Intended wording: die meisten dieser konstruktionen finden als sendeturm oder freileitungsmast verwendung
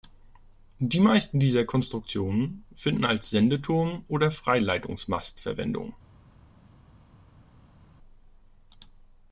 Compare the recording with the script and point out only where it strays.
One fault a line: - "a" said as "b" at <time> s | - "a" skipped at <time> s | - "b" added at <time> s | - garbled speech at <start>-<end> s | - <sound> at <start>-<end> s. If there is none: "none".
none